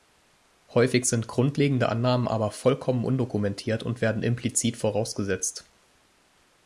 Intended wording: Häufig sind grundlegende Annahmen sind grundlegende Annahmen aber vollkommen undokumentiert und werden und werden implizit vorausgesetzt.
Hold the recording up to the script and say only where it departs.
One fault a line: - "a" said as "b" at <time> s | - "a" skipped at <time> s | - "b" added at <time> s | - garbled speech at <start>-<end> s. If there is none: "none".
- "sind grundlegende Annahmen" skipped at 2.3 s
- "und werden" skipped at 4.2 s